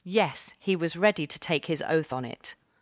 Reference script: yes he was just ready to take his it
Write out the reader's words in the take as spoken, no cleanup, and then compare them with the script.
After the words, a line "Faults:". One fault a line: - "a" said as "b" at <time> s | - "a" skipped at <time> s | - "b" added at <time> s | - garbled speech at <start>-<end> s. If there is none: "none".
yes he was ready to take his oath on it
Faults:
- "just" skipped at 0.9 s
- "oath on" added at 1.9 s